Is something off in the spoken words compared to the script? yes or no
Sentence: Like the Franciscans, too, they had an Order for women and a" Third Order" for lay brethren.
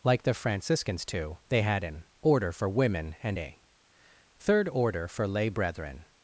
no